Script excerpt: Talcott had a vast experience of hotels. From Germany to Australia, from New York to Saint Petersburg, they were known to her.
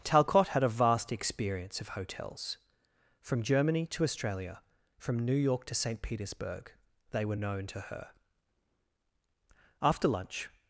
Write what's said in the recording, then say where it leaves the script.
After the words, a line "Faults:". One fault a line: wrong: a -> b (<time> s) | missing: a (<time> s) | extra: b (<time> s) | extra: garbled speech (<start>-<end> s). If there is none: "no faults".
Talcott had a vast experience of hotels. From Germany to Australia, from New York to Saint Petersburg, they were known to her. After lunch
Faults:
extra: After lunch (9.8 s)